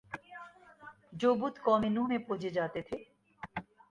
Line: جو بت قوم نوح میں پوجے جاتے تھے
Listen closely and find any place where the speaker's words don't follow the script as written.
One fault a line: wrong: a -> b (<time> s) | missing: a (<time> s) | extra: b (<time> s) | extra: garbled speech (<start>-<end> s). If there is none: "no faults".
no faults